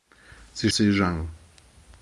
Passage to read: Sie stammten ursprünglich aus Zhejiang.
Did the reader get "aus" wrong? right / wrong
wrong